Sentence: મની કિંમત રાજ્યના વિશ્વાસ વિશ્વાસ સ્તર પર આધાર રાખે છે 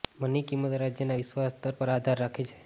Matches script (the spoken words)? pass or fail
fail